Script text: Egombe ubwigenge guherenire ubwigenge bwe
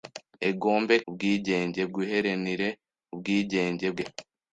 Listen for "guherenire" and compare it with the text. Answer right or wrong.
right